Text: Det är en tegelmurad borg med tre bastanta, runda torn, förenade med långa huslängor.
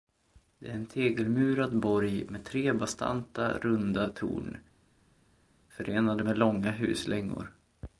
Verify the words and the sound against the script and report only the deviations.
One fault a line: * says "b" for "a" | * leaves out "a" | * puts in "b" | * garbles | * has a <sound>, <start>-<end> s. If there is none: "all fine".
all fine